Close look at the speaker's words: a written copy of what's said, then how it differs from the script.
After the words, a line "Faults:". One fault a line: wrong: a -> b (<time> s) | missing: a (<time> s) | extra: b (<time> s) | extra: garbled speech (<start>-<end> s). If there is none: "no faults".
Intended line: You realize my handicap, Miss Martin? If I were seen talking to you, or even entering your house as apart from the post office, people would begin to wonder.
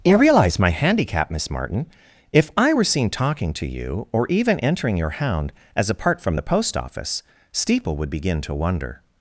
You realize my handicap, Miss Martin? If I were seen talking to you, or even entering your hound as apart from the post office, steeple would begin to wonder.
Faults:
wrong: house -> hound (5.1 s)
wrong: people -> steeple (7.5 s)